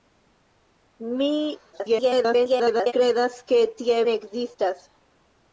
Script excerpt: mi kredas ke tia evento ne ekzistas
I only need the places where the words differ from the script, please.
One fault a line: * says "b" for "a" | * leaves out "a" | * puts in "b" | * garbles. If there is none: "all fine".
* garbles
* leaves out "evento"